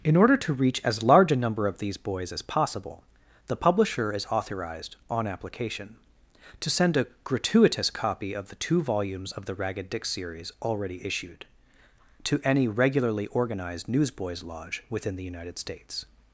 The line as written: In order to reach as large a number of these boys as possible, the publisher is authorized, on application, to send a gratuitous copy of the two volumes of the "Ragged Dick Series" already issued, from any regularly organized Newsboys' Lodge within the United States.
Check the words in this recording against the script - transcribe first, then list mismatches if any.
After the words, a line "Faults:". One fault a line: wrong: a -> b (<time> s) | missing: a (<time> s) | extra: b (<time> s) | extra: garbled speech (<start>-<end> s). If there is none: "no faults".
In order to reach as large a number of these boys as possible, the publisher is authorized, on application, to send a gratuitous copy of the two volumes of the "Ragged Dick Series" already issued, to any regularly organized Newsboys' Lodge within the United States.
Faults:
wrong: from -> to (12.2 s)